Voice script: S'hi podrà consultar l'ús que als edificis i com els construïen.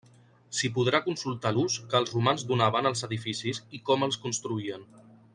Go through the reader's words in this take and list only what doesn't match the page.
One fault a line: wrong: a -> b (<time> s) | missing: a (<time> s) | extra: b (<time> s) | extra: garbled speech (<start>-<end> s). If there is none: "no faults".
extra: els romans donaven (2.0 s)